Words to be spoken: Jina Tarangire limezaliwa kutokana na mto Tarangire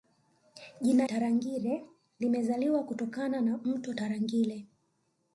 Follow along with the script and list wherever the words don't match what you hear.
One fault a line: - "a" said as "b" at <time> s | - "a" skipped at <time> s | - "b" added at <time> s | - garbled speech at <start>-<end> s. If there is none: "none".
none